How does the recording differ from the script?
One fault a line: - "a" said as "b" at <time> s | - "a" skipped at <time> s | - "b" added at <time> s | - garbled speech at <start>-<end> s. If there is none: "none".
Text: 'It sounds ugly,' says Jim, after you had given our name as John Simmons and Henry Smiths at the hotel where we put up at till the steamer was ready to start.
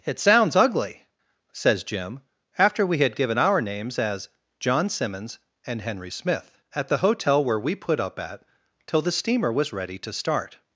- "you" said as "we" at 2.9 s
- "name" said as "names" at 3.6 s
- "Smiths" said as "Smith" at 6.1 s